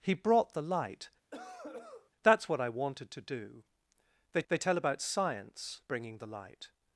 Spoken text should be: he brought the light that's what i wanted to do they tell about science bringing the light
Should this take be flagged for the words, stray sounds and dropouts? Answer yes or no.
yes